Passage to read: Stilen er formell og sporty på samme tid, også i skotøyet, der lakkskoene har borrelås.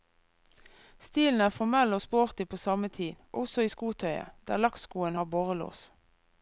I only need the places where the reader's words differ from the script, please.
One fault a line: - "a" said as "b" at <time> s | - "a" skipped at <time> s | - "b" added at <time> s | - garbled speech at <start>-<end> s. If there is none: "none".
none